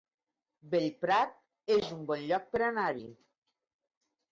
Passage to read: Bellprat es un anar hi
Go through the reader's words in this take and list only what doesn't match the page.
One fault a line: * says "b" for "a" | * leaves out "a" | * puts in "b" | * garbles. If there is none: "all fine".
* puts in "bon lloc per"